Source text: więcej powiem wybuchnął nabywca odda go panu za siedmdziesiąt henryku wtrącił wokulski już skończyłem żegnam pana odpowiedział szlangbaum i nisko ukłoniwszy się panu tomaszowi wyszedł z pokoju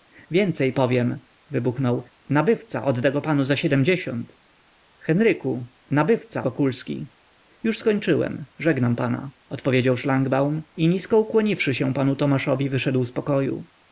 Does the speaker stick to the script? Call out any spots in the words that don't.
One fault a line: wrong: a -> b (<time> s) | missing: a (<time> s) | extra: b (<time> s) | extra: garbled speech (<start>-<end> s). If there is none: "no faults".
wrong: wtrącił -> nabywca (5.9 s)